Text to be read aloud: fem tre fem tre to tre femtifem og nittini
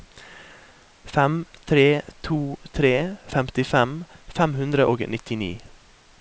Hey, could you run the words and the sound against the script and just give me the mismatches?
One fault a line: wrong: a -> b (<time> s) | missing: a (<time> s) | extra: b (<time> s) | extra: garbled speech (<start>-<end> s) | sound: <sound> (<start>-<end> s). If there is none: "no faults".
wrong: fem -> to (2.3 s)
wrong: to tre femtifem -> femtifem fem hundre (3.3 s)